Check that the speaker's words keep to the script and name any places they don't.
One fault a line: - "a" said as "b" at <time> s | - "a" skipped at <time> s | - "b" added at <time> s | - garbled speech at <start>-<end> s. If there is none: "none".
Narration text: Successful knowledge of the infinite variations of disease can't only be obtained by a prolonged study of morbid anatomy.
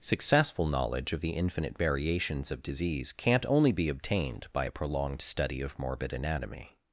none